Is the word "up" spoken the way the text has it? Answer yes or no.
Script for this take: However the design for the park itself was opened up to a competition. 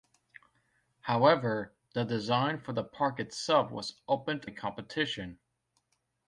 no